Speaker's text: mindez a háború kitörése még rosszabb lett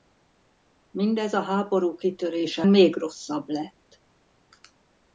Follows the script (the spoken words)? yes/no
yes